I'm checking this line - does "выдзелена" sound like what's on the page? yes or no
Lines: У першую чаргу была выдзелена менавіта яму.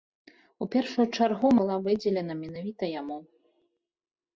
yes